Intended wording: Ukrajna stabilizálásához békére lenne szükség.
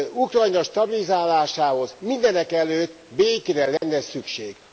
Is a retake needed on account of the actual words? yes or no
yes